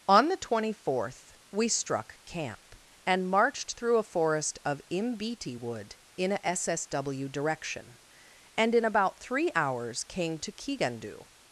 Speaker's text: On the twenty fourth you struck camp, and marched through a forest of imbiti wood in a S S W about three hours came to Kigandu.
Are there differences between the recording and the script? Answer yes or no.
yes